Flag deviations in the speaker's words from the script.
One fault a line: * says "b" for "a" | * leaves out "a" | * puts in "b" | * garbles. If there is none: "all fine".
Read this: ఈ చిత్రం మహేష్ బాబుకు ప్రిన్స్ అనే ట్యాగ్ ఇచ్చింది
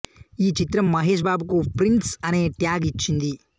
all fine